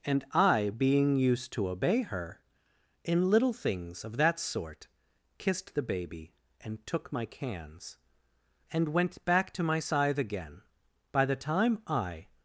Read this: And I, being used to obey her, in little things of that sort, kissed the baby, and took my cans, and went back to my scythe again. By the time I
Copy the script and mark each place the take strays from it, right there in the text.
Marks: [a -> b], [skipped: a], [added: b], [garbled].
And I, being used to obey her, in little things of that sort, kissed the baby, and took my cans, and went back to my scythe again. By the time I